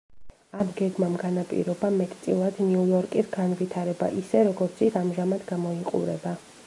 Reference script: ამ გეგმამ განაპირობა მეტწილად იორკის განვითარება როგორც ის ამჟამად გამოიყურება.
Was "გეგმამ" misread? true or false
false